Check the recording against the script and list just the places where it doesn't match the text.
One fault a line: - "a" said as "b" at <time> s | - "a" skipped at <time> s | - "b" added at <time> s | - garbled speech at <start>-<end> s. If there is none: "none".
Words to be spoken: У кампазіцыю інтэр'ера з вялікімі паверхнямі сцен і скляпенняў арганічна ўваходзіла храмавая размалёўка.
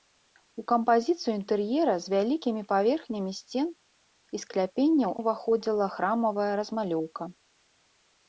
- "арганічна" skipped at 5.1 s